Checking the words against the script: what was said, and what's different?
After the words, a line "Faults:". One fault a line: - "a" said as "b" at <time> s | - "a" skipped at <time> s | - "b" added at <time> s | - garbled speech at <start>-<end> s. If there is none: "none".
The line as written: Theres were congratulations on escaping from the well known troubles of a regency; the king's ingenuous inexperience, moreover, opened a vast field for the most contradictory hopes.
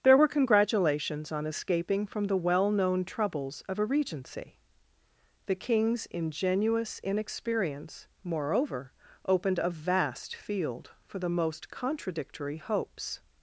There were congratulations on escaping from the well known troubles of a regency; the king's ingenuous inexperience, moreover, opened a vast field for the most contradictory hopes.
Faults:
- "Theres" said as "There" at 0.0 s